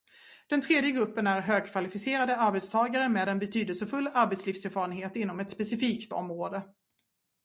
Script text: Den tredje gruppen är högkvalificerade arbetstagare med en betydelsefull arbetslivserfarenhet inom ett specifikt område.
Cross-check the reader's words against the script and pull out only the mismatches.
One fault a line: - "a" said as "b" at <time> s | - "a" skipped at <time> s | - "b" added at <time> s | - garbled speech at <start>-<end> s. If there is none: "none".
none